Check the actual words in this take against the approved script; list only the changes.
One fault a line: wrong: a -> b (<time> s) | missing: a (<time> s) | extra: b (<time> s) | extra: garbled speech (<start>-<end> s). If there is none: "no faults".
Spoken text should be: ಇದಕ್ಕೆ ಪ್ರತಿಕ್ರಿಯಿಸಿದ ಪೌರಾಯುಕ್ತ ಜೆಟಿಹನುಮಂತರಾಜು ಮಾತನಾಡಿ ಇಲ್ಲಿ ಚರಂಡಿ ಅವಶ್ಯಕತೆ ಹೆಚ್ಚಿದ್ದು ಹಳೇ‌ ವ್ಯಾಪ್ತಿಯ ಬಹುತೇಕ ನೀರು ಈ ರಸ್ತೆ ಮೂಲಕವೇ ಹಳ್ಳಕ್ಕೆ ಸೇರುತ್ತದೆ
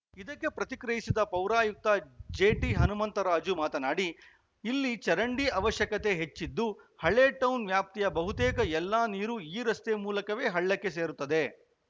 extra: ಟೌನ್ (7.4 s)
extra: ಎಲ್ಲ (8.7 s)